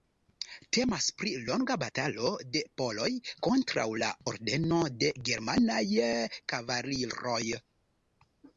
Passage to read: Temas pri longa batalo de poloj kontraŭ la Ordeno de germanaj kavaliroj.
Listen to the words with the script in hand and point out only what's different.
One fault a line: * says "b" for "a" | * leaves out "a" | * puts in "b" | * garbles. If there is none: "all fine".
all fine